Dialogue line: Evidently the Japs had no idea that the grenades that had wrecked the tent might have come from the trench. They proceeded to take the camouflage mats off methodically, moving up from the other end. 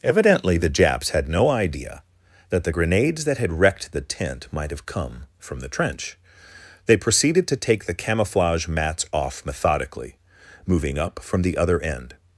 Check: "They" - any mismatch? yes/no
no